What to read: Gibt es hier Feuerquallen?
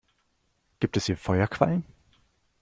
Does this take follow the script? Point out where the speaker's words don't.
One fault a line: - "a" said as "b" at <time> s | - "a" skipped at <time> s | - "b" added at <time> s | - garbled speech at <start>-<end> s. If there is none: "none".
none